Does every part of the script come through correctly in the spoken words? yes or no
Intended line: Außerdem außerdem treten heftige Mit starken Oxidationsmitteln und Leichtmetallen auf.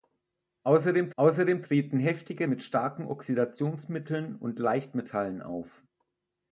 yes